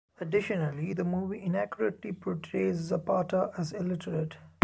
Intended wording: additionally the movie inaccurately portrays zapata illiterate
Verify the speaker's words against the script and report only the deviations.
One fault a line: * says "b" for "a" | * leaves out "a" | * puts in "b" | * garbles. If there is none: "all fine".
* puts in "as"